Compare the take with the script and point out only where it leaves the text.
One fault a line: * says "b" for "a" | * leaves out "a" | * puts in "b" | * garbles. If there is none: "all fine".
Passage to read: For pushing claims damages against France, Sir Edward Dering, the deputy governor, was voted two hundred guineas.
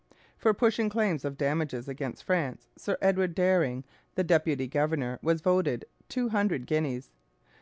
* puts in "of"